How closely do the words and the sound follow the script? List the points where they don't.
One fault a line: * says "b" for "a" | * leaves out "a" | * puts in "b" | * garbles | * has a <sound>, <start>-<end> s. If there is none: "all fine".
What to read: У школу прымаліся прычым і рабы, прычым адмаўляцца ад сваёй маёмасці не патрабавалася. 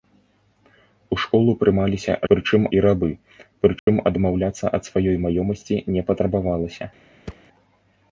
* has a dropout, 3.8-3.9 s
* has a thud, 7.3-7.5 s